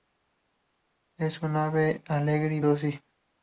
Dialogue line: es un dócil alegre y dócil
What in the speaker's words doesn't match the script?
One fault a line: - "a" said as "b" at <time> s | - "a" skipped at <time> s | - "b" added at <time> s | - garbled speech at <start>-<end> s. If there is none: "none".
- "dócil" said as "ave" at 1.6 s